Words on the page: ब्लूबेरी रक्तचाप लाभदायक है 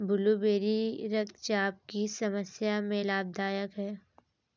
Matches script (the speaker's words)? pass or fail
fail